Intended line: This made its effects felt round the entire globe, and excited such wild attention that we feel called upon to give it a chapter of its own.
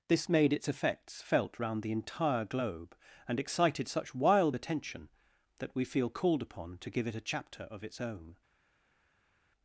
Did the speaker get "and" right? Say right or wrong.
right